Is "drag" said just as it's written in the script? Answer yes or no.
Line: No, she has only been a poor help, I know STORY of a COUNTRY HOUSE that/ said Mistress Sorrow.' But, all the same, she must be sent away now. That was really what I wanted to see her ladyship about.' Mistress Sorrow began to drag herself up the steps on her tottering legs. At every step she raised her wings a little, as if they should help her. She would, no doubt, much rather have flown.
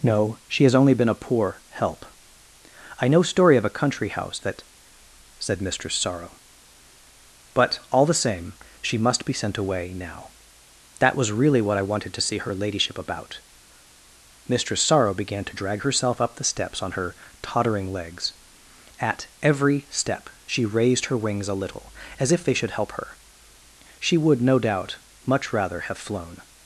yes